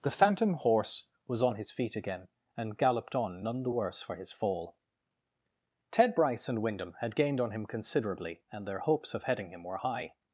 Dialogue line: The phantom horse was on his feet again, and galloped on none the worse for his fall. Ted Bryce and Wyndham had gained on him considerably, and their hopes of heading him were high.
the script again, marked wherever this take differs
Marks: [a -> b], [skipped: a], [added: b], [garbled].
The phantom horse was on his feet again, and galloped on none the worse for his fall. Ted Bryce and Wyndham had gained on him considerably, and their hopes of heading him were high.